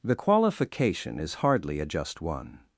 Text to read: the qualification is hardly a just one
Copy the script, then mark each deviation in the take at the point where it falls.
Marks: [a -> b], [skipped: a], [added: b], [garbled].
the qualification is hardly a just one